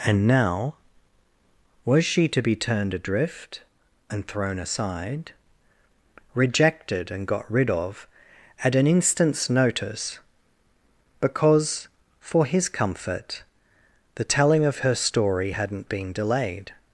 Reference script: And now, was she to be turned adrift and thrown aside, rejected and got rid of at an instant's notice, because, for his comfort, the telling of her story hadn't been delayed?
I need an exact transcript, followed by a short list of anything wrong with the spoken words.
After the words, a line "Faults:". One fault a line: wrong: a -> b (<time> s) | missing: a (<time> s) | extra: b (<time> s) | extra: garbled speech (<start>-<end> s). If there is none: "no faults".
And now, was she to be turned adrift and thrown aside, rejected and got rid of at an instant's notice, because, for his comfort, the telling of her story hadn't been delayed?
Faults:
no faults